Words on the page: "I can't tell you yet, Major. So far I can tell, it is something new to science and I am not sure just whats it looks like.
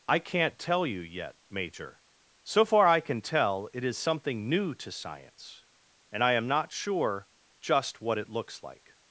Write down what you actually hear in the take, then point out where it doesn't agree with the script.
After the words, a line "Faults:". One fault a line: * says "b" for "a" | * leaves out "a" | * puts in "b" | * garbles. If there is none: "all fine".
"I can't tell you yet, Major. So far I can tell, it is something new to science and I am not sure just what it looks like.
Faults:
* says "what" for "whats"